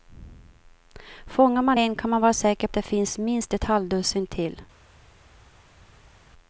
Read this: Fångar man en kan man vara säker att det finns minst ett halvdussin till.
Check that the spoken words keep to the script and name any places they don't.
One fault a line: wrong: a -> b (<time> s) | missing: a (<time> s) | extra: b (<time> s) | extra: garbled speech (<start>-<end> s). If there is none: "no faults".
no faults